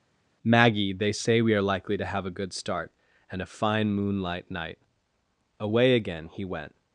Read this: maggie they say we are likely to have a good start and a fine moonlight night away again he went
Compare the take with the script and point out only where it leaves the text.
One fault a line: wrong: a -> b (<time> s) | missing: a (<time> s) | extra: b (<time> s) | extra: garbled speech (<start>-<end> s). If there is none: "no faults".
no faults